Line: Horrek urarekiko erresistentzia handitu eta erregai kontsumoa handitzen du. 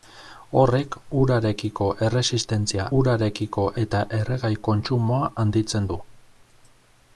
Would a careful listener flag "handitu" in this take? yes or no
yes